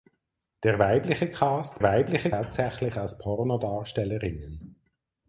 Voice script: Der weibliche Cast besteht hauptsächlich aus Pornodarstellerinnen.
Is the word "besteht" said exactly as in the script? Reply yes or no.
no